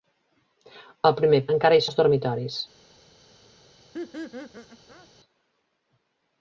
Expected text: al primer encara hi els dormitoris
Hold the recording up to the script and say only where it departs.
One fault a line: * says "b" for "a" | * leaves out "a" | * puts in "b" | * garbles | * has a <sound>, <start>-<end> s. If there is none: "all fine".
* has a laugh, 3.9-5.1 s